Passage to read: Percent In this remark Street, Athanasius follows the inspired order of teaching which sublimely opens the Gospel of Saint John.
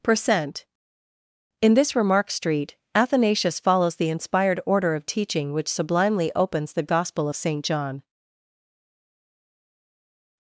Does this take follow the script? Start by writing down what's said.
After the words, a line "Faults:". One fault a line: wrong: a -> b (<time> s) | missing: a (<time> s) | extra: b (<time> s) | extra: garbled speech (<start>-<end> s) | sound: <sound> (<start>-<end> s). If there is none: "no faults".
Percent In this remark Street, Athanasius follows the inspired order of teaching which sublimely opens the Gospel of Saint John.
Faults:
no faults